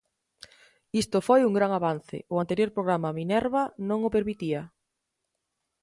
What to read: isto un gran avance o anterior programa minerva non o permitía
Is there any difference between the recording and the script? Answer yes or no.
yes